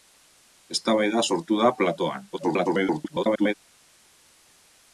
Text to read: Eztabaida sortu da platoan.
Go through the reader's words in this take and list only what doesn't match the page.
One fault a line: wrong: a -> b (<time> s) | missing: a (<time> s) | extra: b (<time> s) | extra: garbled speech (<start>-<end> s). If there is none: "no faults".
extra: garbled speech (2.3-3.5 s)